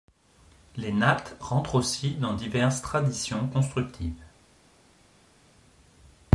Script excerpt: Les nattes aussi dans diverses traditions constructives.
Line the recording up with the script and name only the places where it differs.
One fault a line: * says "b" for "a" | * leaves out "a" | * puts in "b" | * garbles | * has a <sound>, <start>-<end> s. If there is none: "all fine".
* puts in "rentrent"